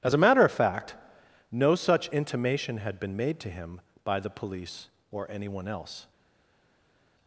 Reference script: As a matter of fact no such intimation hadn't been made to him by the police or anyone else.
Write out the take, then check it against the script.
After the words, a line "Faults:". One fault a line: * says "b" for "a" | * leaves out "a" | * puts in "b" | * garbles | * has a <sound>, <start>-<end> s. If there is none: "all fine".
As a matter of fact no such intimation had been made to him by the police or anyone else.
Faults:
* says "had" for "hadn't"